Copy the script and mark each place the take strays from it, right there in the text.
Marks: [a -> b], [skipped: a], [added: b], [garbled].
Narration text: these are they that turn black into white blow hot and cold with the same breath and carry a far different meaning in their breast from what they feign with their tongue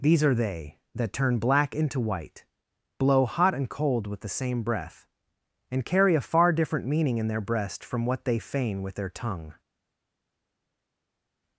these are they that turn black into white blow hot and cold with the same breath and carry a far different meaning in their breast from what they feign with their tongue